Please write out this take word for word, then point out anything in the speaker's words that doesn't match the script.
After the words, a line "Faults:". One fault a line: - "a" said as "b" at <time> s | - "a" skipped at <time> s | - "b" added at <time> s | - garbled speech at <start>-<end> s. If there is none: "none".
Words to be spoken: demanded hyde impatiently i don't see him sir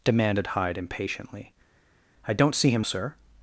demanded hyde impatiently i don't see him sir
Faults:
none